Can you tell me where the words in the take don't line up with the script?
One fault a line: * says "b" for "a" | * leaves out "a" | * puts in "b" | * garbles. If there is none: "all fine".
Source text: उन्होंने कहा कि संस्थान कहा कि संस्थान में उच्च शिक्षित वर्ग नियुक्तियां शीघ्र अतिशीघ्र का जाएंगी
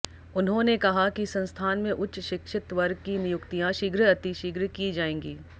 * leaves out "कहा कि संस्थान"
* puts in "की"
* says "की" for "का"